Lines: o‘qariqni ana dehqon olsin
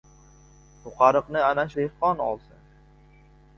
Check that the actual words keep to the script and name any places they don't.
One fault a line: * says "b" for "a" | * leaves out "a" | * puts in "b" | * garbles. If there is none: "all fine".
all fine